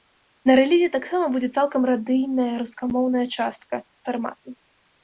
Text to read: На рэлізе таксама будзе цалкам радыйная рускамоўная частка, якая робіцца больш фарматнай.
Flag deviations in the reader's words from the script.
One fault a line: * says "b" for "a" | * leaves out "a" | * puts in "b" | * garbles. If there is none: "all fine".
* leaves out "якая робіцца больш"